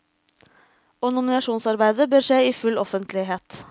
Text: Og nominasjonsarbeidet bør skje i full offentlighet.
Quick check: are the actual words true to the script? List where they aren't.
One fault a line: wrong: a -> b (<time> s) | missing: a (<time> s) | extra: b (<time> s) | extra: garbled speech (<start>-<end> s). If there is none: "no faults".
no faults